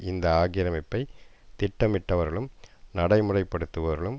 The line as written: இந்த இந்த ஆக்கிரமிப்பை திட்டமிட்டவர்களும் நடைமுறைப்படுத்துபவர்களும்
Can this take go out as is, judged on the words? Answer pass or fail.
fail